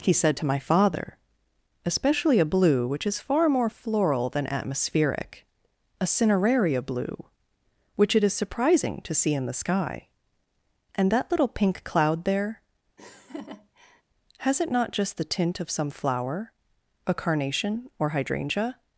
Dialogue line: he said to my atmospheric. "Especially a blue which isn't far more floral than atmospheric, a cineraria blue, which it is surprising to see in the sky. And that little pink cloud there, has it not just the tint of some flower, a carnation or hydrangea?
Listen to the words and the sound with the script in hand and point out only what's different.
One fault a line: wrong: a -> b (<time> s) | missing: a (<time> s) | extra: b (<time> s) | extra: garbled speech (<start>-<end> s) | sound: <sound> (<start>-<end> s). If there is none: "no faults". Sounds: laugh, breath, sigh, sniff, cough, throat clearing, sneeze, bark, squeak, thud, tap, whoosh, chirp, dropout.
wrong: atmospheric -> father (0.6 s)
wrong: isn't -> is (3.1 s)
sound: laugh (13.0-14.0 s)